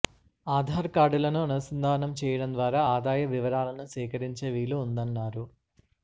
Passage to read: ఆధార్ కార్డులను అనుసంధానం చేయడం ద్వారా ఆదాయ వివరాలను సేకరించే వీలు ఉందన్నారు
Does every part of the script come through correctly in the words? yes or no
yes